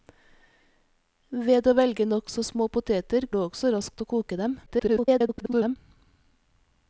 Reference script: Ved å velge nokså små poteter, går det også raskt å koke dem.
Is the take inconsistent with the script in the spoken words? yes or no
yes